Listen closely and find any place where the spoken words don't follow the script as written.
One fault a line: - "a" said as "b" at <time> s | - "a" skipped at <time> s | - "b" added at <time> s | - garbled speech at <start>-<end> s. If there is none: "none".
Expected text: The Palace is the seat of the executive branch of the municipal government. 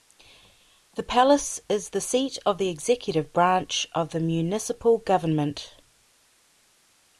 none